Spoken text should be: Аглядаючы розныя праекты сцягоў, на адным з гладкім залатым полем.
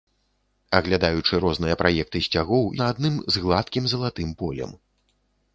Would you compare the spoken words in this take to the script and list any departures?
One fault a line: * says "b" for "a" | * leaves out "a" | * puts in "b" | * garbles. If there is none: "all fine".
all fine